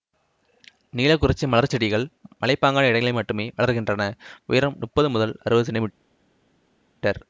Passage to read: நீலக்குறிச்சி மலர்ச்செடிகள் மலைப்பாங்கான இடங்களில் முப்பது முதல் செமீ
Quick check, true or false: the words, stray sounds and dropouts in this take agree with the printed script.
false